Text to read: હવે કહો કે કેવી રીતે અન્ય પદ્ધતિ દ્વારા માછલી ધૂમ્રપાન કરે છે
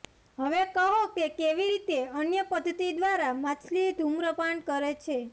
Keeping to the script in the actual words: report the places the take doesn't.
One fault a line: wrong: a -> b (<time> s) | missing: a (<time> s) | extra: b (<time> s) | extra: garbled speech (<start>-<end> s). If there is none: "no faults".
no faults